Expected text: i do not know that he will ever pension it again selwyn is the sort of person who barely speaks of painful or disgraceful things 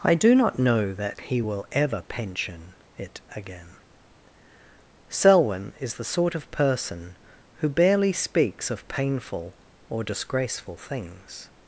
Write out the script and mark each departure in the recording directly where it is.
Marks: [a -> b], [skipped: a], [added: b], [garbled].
i do not know that he will ever pension it again selwyn is the sort of person who barely speaks of painful or disgraceful things